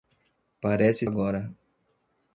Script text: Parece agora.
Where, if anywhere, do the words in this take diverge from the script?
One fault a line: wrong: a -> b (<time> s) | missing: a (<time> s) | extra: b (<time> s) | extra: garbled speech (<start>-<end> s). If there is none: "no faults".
no faults